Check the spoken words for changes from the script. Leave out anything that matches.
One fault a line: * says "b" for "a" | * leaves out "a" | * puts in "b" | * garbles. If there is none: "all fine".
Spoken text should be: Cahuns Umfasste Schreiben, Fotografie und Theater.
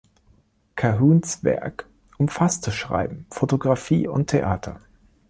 * puts in "Werk"